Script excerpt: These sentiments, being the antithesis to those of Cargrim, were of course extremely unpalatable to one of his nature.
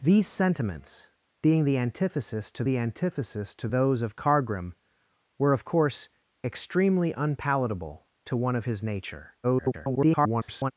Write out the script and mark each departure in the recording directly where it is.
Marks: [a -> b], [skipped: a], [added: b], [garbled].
These sentiments, being the antithesis to [added: the antithesis to] those of Cargrim, were of course extremely unpalatable to one of his nature. [garbled]